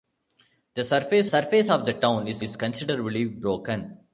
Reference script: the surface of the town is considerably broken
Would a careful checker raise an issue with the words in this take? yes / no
yes